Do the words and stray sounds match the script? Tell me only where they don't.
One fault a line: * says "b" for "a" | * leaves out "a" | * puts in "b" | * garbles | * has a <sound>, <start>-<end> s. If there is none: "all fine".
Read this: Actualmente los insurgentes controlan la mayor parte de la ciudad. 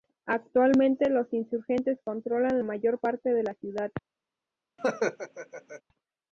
* leaves out "la"
* has a laugh, 4.8-5.8 s